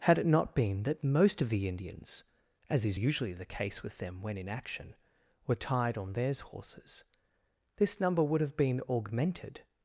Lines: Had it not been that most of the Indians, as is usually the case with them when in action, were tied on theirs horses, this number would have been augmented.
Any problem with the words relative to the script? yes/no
no